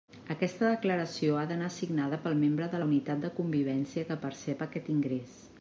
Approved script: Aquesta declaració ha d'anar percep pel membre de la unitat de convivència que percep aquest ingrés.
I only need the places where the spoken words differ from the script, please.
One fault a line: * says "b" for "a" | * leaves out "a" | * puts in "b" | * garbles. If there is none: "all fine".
* says "signada" for "percep"